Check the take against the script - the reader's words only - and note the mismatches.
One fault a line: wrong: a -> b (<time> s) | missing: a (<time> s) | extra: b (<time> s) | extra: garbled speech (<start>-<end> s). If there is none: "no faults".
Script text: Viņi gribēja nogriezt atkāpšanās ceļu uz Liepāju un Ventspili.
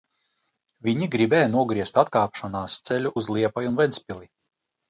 no faults